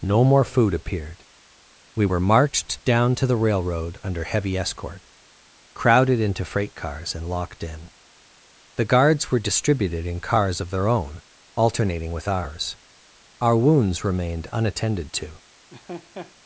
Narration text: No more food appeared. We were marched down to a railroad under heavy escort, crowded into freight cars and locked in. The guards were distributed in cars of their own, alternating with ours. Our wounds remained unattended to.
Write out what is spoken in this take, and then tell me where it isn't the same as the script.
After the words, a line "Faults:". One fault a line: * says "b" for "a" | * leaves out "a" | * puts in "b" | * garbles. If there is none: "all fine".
No more food appeared. We were marched down to the railroad under heavy escort, crowded into freight cars and locked in. The guards were distributed in cars of their own, alternating with ours. Our wounds remained unattended to.
Faults:
* says "the" for "a"